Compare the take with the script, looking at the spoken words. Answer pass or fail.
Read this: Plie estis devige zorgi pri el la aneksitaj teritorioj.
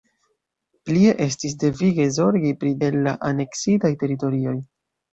pass